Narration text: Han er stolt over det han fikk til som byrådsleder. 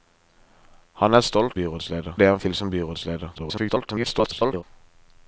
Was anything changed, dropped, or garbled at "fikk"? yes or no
yes